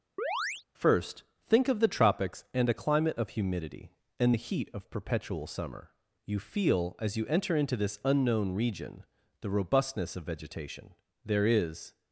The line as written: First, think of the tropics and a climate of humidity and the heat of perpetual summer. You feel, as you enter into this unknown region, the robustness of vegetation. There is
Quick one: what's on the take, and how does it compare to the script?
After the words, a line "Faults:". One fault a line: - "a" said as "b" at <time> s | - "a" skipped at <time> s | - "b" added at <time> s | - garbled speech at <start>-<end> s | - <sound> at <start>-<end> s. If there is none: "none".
First, think of the tropics and a climate of humidity and the heat of perpetual summer. You feel, as you enter into this unknown region, the robustness of vegetation. There is
Faults:
- chirp at 0.2-0.6 s